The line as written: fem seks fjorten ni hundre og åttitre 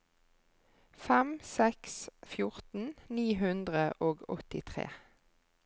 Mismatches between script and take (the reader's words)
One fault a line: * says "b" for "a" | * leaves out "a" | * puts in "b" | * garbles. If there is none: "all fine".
all fine